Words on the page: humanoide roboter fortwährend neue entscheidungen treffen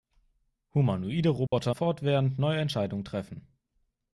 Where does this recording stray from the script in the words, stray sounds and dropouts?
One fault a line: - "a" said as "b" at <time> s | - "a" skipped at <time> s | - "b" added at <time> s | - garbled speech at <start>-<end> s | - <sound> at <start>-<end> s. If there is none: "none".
- dropout at 1.5-1.5 s